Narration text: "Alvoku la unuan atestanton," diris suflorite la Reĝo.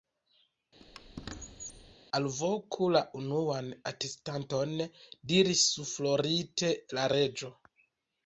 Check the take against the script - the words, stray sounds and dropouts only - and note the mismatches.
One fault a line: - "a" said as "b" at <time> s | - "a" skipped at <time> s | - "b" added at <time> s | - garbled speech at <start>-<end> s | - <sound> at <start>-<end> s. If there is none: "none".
- squeak at 0.8-1.9 s